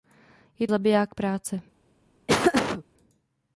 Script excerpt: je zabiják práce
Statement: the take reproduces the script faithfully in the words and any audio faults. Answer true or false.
false